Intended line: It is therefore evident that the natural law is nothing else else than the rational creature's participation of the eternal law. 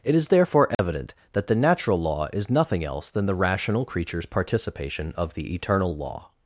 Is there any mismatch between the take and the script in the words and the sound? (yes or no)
yes